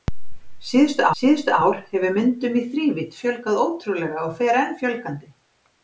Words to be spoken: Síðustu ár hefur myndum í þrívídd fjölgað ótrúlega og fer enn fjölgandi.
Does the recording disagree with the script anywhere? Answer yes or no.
yes